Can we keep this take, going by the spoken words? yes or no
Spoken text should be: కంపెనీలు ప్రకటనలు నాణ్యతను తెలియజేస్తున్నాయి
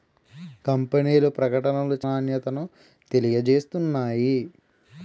yes